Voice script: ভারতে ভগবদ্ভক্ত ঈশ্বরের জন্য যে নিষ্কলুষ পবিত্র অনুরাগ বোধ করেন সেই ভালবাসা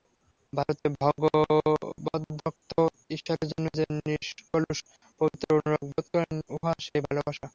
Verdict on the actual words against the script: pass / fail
fail